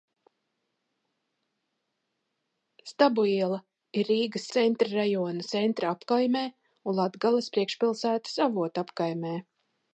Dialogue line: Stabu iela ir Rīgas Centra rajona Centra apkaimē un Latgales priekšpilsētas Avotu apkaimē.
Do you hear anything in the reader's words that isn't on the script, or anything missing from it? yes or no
no